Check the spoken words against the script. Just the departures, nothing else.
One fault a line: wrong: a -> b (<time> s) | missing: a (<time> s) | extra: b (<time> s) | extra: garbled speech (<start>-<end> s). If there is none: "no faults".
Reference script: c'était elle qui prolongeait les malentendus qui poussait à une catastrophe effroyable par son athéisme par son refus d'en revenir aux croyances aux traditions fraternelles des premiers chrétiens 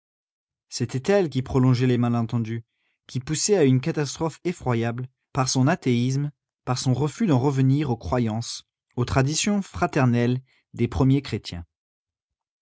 no faults